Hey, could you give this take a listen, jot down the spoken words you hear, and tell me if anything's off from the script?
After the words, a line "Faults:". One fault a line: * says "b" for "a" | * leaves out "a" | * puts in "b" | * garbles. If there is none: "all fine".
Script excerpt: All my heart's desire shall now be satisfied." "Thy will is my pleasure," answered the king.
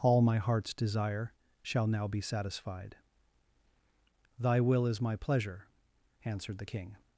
All my heart's desire shall now be satisfied." "Thy will is my pleasure," answered the king.
Faults:
all fine